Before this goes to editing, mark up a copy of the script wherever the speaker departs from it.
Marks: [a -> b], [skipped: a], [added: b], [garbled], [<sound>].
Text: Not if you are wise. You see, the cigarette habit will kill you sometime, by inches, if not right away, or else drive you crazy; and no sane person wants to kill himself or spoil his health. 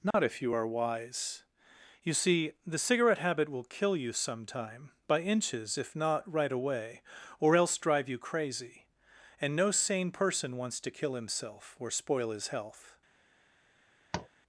Not [dropout] if you are wise. You see, the cigarette habit will kill you sometime, by inches, if not right away, or else drive you crazy; and no sane person wants to kill himself or spoil his health. [tap]